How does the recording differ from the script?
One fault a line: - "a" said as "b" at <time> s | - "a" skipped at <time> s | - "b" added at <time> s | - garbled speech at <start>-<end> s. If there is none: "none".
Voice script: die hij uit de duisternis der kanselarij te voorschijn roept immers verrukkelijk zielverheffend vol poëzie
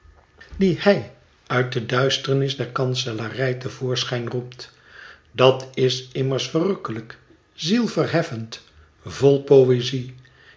- "dat is" added at 5.3 s